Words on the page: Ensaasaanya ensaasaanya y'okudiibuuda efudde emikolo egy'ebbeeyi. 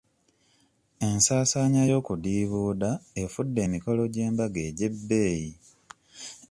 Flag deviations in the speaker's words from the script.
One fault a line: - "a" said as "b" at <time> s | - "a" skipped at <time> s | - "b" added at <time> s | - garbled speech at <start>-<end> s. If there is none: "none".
- "ensaasaanya" skipped at 1.8 s
- "gy'embaga" added at 4.1 s